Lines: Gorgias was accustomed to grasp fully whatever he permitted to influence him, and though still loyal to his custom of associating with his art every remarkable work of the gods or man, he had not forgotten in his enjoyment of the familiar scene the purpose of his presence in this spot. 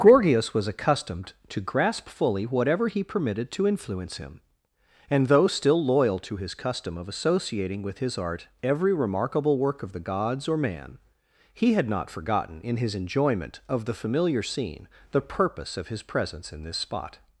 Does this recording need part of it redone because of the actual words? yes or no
no